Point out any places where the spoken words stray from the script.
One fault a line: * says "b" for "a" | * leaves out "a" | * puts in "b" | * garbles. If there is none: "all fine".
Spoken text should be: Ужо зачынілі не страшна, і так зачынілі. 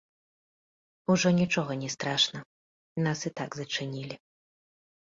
* says "нічога" for "зачынілі"
* puts in "нас"